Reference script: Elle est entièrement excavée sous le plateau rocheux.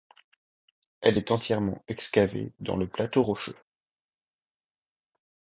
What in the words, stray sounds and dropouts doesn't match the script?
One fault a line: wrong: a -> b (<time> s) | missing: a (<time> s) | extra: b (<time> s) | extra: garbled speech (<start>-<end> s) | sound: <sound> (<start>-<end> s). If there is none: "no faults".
wrong: sous -> dans (2.6 s)